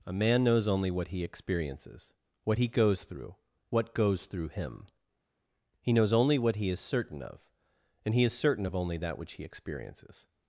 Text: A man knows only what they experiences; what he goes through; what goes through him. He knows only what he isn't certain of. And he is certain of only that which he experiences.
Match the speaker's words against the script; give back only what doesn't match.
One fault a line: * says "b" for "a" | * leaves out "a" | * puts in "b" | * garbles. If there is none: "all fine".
* says "he" for "they"
* says "is" for "isn't"